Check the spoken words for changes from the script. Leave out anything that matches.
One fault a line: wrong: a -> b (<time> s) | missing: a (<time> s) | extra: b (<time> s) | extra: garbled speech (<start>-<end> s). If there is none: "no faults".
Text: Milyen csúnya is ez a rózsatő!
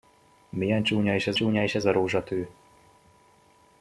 extra: csúnya is ez (1.3 s)